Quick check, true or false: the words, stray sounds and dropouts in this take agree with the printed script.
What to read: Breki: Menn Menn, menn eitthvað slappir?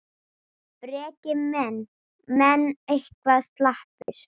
false